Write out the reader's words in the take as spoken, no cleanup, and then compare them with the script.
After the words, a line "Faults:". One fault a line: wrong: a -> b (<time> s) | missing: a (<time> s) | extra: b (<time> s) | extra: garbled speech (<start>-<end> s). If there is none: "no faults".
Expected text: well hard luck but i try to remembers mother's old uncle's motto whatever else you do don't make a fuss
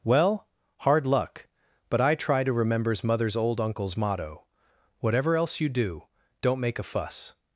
well hard luck but i try to remembers mother's old uncle's motto whatever else you do don't make a fuss
Faults:
no faults